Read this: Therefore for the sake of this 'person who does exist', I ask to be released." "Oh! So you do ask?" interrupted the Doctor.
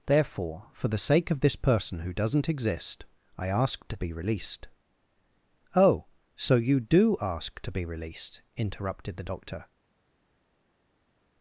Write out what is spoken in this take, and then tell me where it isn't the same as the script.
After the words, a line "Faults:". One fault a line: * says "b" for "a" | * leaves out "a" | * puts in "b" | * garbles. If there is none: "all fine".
Therefore for the sake of this 'person who doesn't exist', I ask to be released." "Oh! So you do ask to be released?" interrupted the Doctor.
Faults:
* says "doesn't" for "does"
* puts in "to be released"